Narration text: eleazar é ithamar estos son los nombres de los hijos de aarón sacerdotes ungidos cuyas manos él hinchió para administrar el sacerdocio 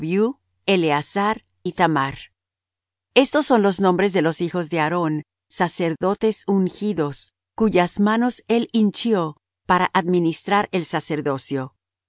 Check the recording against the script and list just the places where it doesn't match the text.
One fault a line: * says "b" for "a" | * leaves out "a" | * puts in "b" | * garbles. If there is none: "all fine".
* leaves out "é"